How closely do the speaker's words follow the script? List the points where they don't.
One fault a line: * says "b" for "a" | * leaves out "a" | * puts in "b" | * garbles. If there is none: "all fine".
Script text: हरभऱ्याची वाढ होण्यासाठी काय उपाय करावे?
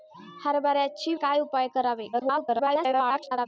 * leaves out "वाढ होण्यासाठी"
* garbles